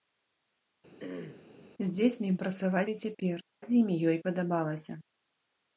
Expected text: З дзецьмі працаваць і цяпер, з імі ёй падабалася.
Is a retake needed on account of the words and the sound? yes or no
yes